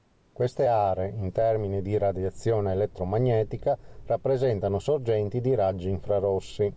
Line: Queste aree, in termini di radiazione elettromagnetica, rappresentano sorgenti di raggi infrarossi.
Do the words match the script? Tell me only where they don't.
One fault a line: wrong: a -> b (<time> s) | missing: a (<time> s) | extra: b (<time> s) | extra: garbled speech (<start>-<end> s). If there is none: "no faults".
no faults